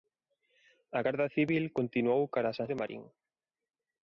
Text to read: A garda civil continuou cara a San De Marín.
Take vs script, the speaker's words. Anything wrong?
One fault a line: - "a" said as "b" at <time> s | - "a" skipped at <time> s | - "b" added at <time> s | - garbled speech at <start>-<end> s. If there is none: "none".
none